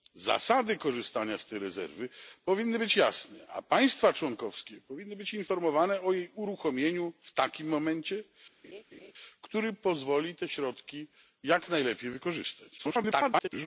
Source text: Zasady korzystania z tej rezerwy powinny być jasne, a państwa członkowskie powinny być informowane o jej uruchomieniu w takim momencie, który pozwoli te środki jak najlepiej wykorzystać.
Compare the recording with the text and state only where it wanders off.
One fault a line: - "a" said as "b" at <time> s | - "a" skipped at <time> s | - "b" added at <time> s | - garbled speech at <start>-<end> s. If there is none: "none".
- garbled speech at 12.8-13.7 s